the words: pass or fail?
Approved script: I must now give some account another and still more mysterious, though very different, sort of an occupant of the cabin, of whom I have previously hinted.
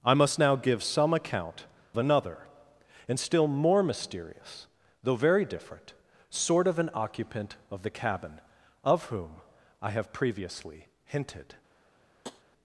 pass